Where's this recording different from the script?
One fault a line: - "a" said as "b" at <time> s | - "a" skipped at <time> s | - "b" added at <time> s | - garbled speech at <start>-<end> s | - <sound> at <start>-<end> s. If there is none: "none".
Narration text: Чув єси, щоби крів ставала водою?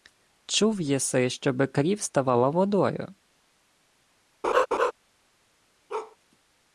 - laugh at 4.4-4.9 s
- bark at 5.9-6.2 s